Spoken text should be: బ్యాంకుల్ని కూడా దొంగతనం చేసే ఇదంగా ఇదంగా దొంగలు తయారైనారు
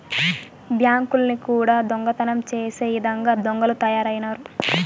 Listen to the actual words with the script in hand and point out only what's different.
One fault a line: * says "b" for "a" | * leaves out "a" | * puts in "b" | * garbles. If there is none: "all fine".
* leaves out "ఇదంగా"